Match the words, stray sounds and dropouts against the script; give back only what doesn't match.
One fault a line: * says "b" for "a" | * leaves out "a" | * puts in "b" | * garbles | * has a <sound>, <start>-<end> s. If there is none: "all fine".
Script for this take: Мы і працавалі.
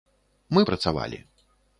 all fine